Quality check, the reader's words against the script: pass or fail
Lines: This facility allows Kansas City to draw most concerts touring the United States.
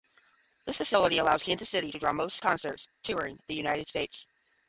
pass